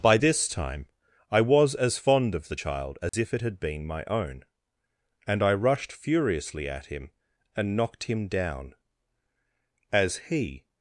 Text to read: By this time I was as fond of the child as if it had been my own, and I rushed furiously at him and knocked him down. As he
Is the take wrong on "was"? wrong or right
right